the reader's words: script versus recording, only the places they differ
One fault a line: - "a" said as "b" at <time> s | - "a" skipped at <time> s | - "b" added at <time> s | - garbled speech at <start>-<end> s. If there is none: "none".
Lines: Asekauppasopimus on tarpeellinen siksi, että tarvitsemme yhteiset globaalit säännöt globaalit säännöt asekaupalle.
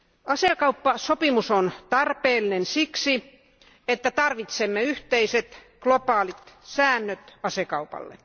- "globaalit säännöt" skipped at 7.4 s